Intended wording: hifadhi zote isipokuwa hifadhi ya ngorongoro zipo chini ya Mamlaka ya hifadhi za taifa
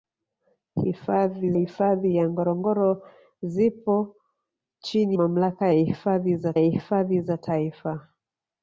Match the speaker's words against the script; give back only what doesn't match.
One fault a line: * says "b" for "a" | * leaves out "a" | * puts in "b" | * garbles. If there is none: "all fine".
* leaves out "zote isipokuwa"
* puts in "Mamlaka"
* says "hifadhi za" for "Mamlaka ya"